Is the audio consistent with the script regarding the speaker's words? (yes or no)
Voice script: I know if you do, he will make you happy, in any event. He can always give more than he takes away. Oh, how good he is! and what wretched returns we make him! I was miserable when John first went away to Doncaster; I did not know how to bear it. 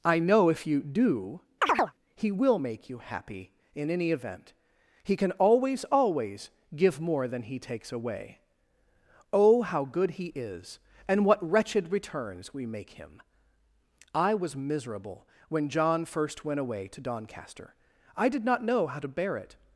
no